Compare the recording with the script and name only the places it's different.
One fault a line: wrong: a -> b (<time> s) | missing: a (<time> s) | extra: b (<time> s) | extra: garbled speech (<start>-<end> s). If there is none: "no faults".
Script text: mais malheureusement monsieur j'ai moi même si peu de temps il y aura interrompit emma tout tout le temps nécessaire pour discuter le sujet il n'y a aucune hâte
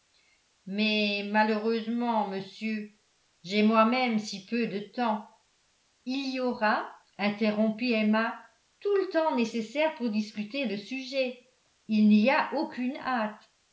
missing: tout (9.0 s)